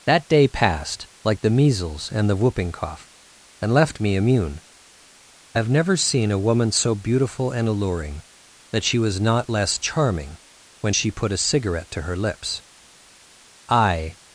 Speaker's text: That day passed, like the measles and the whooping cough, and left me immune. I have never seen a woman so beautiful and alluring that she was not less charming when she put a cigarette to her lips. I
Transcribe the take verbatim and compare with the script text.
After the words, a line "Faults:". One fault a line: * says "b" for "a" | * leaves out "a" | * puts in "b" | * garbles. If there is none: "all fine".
That day passed, like the measles and the whooping cough, and left me immune. I have never seen a woman so beautiful and alluring that she was not less charming when she put a cigarette to her lips. I
Faults:
all fine